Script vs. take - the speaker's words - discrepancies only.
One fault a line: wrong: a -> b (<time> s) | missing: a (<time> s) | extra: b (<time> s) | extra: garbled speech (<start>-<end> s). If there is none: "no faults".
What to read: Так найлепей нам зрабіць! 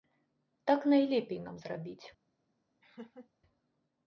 no faults